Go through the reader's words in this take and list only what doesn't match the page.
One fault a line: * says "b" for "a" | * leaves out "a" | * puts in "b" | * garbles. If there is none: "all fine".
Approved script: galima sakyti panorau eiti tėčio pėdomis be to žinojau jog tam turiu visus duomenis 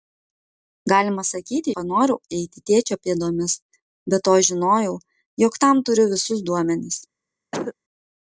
all fine